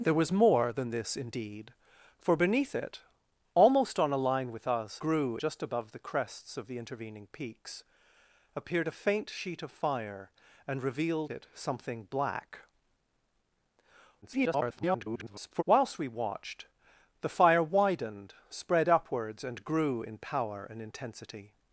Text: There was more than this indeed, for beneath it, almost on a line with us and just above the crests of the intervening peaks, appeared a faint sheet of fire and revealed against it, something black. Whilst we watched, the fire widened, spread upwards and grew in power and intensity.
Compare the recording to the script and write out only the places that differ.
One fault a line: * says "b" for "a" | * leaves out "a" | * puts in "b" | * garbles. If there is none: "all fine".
* says "grew" for "and"
* leaves out "against"
* garbles